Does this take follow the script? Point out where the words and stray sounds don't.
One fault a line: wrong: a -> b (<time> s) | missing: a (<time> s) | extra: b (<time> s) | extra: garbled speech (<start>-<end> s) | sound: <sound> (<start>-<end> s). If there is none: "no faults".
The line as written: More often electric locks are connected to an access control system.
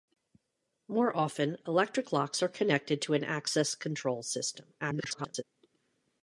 extra: garbled speech (4.8-5.4 s)